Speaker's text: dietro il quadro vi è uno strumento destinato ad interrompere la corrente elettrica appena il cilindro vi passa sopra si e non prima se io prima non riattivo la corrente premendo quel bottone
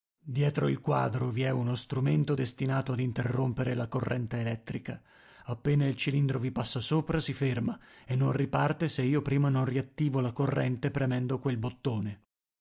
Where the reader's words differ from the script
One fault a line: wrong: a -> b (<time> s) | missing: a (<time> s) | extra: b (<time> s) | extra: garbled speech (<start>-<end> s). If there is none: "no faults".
extra: ferma (7.3 s)
wrong: prima -> riparte (8.3 s)